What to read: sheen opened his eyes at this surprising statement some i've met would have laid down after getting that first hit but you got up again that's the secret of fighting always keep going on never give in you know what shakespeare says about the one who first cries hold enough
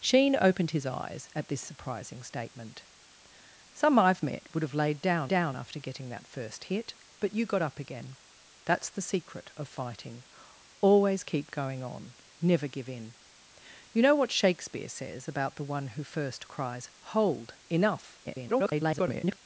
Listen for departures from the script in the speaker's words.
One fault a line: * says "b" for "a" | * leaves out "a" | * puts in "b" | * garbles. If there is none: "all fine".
* puts in "down"
* garbles